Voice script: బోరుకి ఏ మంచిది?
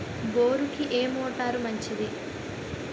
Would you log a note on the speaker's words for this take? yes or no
yes